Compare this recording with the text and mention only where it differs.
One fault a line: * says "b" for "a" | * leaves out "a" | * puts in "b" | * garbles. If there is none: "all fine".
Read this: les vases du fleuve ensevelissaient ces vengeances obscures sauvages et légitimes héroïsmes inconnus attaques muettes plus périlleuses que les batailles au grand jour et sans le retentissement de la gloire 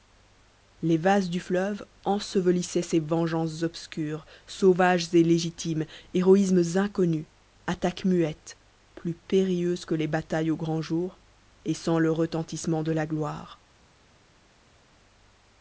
all fine